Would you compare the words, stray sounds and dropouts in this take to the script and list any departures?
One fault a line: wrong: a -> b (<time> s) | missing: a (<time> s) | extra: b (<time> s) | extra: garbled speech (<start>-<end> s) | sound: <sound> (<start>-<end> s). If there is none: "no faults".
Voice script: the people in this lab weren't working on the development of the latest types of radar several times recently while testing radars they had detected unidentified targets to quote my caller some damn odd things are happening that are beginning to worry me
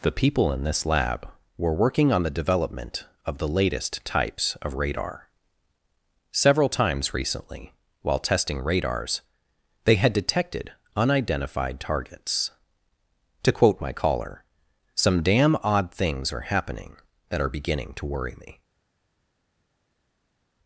wrong: weren't -> were (1.6 s)